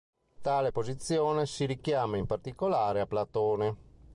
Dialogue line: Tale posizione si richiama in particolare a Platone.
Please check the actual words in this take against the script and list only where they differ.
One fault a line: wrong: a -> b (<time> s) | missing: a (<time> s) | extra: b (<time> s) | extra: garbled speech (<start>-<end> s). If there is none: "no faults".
no faults